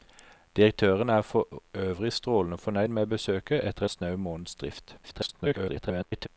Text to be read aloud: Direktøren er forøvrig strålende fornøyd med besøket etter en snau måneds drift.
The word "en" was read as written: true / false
false